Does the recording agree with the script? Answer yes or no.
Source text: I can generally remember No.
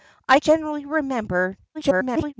no